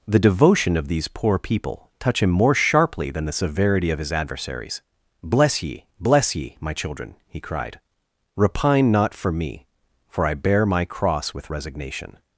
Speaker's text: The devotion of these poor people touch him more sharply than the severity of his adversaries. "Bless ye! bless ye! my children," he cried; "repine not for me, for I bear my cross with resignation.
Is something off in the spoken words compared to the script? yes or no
no